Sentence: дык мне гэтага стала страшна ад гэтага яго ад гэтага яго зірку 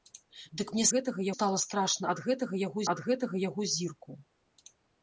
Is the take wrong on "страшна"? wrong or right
right